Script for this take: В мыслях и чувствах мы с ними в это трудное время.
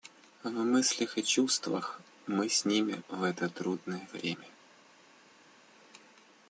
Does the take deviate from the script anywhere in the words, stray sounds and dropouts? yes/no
no